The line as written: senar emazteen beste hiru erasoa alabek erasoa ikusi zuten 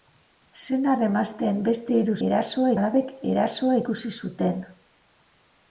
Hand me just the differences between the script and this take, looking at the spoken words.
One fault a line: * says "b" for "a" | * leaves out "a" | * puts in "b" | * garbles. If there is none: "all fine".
all fine